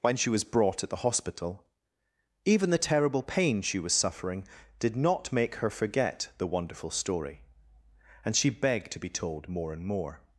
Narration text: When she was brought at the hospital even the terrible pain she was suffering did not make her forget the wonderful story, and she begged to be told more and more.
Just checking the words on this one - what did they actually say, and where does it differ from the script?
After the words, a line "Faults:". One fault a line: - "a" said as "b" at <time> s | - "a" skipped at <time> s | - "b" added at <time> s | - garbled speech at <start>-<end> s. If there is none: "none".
When she was brought at the hospital even the terrible pain she was suffering did not make her forget the wonderful story, and she begged to be told more and more.
Faults:
none